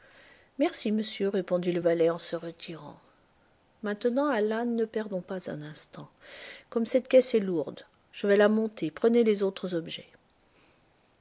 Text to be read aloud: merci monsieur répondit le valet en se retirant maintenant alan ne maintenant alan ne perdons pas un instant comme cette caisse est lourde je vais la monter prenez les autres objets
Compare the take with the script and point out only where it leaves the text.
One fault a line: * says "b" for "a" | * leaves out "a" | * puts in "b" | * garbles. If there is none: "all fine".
* leaves out "maintenant alan ne"